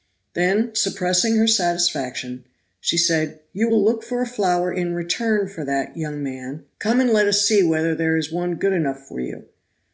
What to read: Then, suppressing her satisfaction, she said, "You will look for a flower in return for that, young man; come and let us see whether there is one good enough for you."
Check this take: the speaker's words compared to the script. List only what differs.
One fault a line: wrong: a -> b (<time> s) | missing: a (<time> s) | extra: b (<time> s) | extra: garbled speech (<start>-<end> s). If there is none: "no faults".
no faults